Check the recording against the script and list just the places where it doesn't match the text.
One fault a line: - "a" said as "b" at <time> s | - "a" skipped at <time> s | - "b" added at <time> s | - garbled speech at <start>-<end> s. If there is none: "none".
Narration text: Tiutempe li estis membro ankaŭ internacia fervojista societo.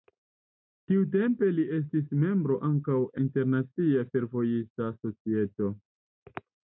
none